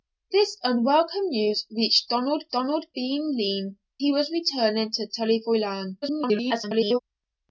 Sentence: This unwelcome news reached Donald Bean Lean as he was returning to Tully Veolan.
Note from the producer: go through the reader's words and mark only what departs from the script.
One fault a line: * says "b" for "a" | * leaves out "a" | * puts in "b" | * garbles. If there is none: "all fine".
* puts in "Donald"
* leaves out "as"
* garbles